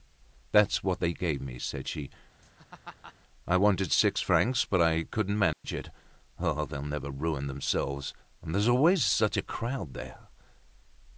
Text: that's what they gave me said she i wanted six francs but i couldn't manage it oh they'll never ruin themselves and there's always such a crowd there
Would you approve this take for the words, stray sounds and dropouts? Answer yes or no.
no